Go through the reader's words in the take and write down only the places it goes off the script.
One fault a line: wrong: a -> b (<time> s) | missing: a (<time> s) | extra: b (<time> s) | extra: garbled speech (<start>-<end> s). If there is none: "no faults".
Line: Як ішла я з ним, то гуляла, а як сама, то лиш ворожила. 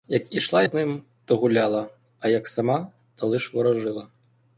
missing: я (0.6 s)